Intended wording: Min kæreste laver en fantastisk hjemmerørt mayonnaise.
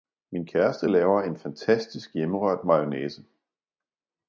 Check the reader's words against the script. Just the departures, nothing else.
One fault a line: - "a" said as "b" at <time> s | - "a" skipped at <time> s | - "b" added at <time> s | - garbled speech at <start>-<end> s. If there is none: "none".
none